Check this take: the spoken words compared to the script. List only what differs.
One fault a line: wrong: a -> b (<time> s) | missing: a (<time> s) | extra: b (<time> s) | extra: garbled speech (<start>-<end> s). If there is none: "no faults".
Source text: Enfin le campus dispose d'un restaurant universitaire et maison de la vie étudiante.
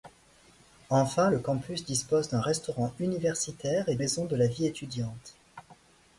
no faults